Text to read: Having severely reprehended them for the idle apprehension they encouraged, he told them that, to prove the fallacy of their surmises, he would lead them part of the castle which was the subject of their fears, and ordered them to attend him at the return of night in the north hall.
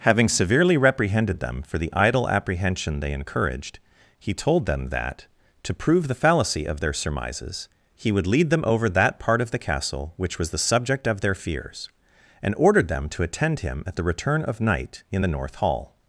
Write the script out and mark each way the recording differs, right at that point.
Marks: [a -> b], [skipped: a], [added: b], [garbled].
Having severely reprehended them for the idle apprehension they encouraged, he told them that, to prove the fallacy of their surmises, he would lead them [added: over that] part of the castle which was the subject of their fears, and ordered them to attend him at the return of night in the north hall.